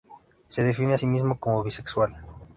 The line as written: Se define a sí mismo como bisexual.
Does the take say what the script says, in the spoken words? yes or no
yes